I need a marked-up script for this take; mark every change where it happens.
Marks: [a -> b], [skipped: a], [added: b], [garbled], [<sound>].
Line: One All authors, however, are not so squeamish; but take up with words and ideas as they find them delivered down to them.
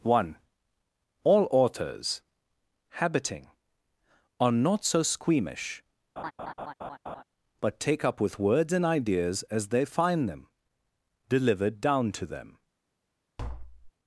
One All authors, [however, -> habiting] are not so squeamish; [laugh] but take up with words and ideas as they find them delivered down to them. [tap]